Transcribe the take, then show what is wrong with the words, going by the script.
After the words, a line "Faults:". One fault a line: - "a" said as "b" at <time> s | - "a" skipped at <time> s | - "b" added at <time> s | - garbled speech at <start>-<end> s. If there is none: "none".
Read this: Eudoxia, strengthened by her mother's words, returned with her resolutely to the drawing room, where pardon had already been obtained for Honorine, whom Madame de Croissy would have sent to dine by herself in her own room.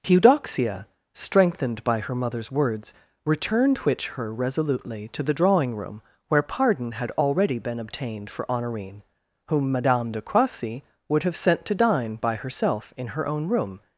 Eudoxia, strengthened by her mother's words, returned which her resolutely to the drawing room, where pardon had already been obtained for Honorine, whom Madame de Croissy would have sent to dine by herself in her own room.
Faults:
- "with" said as "which" at 3.8 s